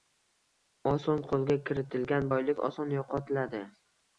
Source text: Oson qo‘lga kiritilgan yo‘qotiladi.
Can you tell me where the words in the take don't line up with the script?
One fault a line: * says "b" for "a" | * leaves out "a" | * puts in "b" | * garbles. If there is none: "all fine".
* puts in "boylik oson"